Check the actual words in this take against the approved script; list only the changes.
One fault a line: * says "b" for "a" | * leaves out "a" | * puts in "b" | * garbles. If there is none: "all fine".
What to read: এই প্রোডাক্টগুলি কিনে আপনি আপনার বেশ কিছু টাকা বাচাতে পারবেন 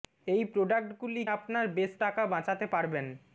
* leaves out "কিনে আপনি"
* leaves out "কিছু"